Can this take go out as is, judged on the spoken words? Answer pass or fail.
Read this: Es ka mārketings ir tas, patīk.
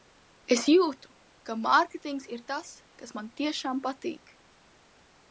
fail